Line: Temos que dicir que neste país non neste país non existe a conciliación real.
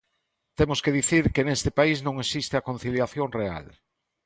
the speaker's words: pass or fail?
fail